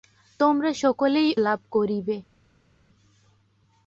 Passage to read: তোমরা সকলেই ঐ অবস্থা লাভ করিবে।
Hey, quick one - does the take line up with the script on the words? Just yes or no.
no